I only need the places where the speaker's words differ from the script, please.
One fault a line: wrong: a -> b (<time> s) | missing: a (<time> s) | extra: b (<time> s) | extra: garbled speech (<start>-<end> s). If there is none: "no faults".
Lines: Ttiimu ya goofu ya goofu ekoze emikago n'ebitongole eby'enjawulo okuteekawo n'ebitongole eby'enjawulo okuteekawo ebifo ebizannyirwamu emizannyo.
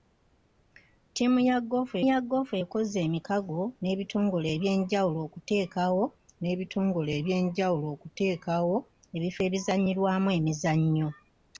no faults